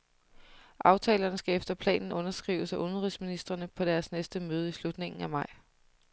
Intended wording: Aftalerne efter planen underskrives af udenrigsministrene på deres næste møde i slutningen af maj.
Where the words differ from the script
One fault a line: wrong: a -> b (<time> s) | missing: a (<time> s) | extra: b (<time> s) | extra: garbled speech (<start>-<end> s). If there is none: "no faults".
extra: skal (1.3 s)